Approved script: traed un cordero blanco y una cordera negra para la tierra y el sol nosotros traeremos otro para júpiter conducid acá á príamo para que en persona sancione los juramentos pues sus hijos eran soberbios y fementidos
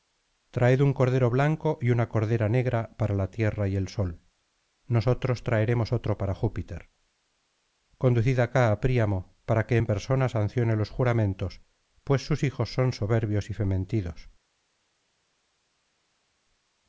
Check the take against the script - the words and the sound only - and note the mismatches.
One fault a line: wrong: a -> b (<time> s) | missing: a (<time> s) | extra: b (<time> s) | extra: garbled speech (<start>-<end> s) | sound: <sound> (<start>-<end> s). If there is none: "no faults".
wrong: eran -> son (12.7 s)